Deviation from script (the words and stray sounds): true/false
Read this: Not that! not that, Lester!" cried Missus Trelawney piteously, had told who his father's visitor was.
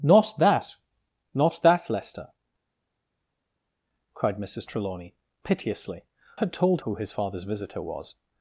false